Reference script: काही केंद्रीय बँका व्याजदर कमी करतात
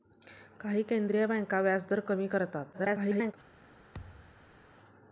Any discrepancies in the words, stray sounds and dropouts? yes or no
yes